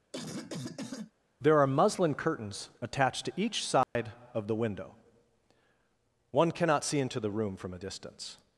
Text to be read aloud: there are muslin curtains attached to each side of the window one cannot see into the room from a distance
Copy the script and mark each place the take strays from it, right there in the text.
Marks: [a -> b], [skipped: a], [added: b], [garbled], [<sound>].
[cough] there are muslin curtains attached to each side [dropout] of the window one cannot see into the room from a distance